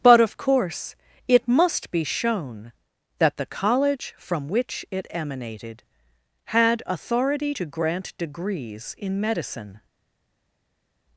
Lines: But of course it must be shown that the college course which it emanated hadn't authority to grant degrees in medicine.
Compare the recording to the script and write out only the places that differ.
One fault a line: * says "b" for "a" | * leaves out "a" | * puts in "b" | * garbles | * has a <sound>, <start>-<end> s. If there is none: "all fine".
* says "from" for "course"
* says "had" for "hadn't"